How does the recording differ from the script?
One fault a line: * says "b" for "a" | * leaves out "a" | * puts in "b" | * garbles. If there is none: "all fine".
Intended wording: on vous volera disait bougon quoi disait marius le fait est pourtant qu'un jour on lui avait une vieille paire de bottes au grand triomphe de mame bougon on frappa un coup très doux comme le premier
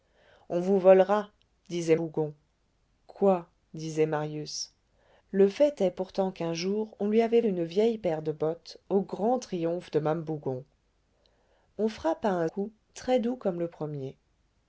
all fine